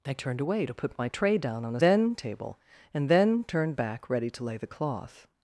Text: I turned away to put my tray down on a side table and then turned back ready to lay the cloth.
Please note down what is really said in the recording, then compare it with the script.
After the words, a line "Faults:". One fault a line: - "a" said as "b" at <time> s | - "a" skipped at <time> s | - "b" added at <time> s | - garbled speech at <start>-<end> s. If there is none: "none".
I turned away to put my tray down on a then table and then turned back ready to lay the cloth.
Faults:
- "side" said as "then" at 1.8 s